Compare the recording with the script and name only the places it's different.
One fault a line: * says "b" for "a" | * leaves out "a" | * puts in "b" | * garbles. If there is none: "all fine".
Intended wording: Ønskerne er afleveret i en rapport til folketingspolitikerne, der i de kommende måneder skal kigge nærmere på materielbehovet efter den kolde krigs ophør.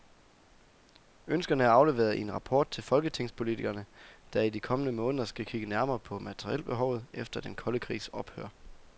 all fine